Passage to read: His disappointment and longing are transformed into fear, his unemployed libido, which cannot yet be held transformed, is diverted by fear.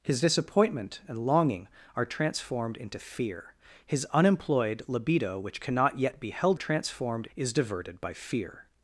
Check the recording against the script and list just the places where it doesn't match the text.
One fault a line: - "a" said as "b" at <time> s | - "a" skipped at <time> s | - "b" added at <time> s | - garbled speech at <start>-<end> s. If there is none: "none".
none